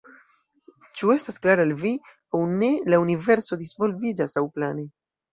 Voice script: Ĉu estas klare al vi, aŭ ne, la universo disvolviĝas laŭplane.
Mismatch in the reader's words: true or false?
false